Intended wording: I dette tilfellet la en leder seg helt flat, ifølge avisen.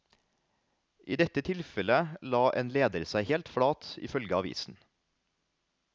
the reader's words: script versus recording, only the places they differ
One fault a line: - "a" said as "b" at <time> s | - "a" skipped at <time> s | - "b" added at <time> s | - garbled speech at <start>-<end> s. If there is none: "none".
none